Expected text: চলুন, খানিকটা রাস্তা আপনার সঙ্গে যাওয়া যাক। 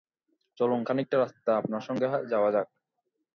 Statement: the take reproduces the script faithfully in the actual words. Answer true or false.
true